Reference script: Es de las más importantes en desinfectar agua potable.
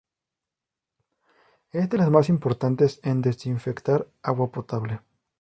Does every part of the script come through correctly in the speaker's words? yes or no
yes